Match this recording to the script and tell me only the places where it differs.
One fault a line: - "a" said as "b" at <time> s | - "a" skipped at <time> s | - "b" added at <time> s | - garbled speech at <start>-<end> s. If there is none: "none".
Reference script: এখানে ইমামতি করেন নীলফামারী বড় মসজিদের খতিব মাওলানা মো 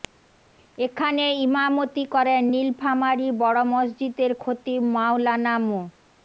none